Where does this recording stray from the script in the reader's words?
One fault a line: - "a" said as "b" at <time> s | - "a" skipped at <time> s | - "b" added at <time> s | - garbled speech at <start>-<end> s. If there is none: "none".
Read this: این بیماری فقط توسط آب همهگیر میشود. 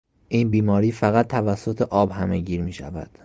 none